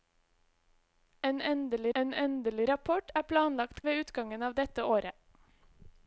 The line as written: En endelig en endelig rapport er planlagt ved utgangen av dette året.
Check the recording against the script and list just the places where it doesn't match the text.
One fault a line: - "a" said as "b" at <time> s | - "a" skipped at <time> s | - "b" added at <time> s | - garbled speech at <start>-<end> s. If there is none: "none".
none